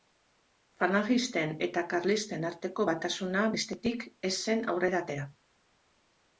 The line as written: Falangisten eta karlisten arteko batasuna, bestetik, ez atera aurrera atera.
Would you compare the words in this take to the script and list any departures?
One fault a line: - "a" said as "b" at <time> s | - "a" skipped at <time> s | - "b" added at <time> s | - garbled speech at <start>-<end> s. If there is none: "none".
- "atera" said as "zen" at 4.4 s